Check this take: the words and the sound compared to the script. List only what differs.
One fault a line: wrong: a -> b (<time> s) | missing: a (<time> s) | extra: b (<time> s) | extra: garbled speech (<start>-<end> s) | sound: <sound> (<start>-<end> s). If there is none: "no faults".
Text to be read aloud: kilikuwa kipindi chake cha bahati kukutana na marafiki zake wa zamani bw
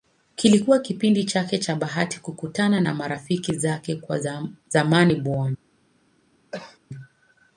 sound: cough (6.5-6.8 s)